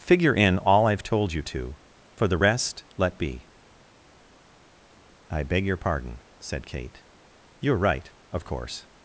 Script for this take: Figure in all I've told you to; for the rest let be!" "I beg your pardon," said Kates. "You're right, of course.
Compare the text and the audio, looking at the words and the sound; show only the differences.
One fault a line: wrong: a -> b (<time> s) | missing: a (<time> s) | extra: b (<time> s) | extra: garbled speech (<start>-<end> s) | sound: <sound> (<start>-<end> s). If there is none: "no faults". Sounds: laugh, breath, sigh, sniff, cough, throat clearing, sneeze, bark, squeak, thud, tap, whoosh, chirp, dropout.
wrong: Kates -> Kate (6.6 s)